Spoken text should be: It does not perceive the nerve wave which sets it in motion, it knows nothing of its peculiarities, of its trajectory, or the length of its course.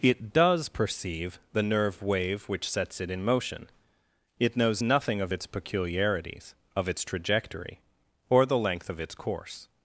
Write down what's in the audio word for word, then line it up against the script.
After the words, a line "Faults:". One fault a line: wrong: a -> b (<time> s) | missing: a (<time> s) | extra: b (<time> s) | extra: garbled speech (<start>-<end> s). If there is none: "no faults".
It does perceive the nerve wave which sets it in motion, it knows nothing of its peculiarities, of its trajectory, or the length of its course.
Faults:
missing: not (0.7 s)